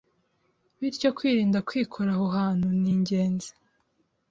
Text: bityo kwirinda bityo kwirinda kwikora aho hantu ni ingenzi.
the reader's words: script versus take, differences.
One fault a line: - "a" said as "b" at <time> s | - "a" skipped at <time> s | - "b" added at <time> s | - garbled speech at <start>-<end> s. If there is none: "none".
- "bityo kwirinda" skipped at 1.6 s